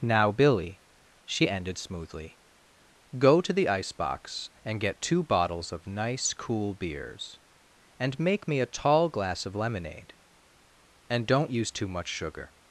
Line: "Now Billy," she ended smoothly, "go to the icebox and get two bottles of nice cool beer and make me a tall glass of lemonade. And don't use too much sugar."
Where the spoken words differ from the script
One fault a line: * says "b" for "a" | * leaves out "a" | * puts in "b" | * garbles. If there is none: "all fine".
* says "beers" for "beer"